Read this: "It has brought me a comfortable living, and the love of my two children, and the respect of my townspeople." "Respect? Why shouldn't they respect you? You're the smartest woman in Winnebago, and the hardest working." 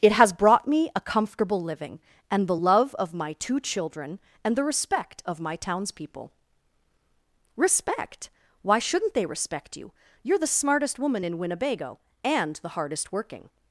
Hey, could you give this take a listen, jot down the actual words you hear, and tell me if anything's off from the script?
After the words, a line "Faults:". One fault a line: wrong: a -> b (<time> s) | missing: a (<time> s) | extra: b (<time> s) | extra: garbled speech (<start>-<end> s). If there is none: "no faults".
"It has brought me a comfortable living, and the love of my two children, and the respect of my townspeople." "Respect? Why shouldn't they respect you? You're the smartest woman in Winnebago, and the hardest working."
Faults:
no faults